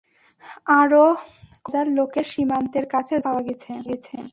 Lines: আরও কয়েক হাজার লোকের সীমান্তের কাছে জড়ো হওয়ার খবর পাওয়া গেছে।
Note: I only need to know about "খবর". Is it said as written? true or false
false